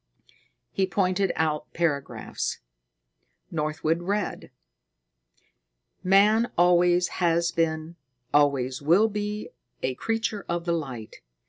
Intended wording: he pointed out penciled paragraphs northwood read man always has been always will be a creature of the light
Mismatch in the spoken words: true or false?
true